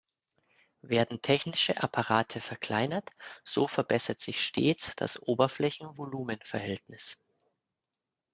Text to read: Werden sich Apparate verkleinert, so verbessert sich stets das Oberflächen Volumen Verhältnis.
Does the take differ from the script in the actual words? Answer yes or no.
yes